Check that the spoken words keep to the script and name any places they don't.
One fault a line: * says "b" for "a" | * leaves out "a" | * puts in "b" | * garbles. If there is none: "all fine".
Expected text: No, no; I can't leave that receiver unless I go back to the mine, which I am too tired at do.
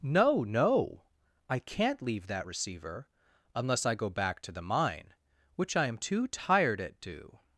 all fine